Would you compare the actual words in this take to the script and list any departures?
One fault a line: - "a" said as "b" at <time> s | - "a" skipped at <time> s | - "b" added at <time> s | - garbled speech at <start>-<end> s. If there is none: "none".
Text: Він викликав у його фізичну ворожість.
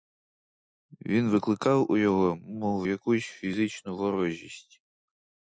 - "мов якусь" added at 2.4 s